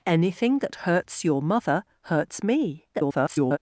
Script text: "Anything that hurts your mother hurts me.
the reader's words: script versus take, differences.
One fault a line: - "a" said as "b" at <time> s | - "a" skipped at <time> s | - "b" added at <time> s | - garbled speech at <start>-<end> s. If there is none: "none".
- garbled speech at 2.9-3.6 s